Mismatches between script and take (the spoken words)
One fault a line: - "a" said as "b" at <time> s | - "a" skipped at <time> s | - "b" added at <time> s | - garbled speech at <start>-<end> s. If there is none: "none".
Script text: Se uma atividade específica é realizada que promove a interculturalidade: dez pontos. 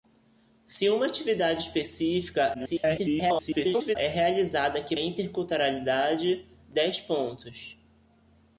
- garbled speech at 2.5-4.0 s
- "promove" skipped at 5.0 s